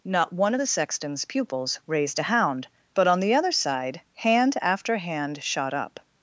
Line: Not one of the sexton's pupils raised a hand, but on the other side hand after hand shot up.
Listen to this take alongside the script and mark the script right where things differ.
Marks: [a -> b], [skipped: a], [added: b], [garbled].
Not one of the sexton's pupils raised a [hand, -> hound] but on the other side hand after hand shot up.